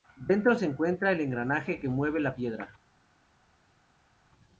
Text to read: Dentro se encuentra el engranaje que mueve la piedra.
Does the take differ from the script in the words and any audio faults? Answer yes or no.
no